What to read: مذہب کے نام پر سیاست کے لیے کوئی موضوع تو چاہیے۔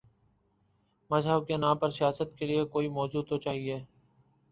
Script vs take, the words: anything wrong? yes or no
no